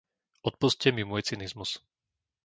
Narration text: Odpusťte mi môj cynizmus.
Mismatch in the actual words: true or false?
false